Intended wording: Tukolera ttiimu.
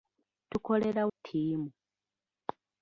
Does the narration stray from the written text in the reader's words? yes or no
no